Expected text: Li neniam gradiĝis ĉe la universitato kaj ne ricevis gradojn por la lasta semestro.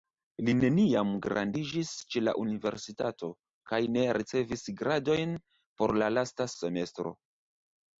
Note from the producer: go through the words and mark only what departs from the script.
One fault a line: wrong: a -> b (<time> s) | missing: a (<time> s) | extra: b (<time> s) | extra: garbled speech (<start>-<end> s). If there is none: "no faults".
no faults